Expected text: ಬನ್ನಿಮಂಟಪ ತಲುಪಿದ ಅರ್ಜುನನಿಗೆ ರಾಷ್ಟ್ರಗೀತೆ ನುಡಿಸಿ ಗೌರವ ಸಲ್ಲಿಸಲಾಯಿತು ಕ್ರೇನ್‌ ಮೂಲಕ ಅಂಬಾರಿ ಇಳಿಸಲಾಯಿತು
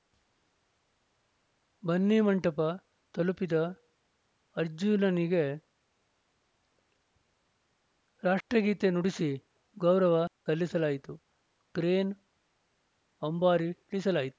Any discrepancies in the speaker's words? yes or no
yes